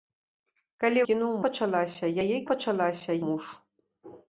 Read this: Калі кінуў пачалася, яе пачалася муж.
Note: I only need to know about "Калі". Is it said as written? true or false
true